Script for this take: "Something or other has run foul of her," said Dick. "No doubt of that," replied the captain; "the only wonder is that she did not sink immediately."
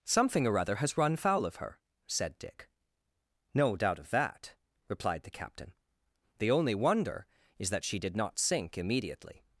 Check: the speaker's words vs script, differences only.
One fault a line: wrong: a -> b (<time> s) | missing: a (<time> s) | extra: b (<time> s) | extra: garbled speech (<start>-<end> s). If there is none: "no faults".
no faults